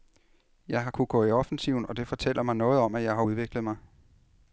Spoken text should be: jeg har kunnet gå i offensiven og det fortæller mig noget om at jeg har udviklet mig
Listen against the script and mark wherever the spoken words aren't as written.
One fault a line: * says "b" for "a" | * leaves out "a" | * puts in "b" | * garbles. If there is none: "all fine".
all fine